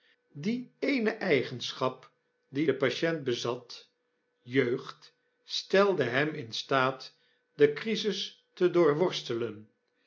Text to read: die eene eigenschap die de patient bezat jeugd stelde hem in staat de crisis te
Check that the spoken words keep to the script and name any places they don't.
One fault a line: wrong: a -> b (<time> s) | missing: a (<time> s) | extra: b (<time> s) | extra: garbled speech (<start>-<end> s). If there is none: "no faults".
no faults